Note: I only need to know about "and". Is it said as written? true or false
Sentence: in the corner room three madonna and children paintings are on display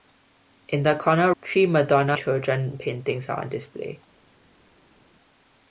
false